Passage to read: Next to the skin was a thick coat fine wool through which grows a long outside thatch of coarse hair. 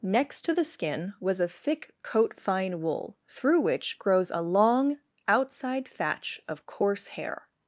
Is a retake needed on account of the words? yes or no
no